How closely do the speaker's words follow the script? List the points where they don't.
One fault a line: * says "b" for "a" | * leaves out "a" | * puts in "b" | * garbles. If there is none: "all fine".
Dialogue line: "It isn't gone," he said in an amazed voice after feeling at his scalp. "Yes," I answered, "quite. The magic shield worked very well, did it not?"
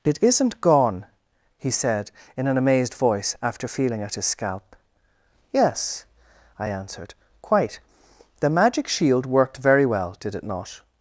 all fine